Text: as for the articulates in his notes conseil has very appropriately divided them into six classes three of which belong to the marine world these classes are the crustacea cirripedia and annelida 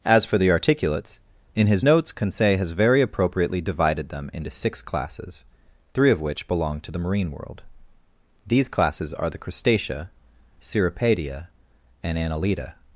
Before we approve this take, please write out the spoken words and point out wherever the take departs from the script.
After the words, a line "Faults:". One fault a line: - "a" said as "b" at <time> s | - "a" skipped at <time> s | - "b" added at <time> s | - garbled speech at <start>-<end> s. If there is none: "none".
as for the articulates in his notes conseil has very appropriately divided them into six classes three of which belong to the marine world these classes are the crustacea cirripedia and annelida
Faults:
none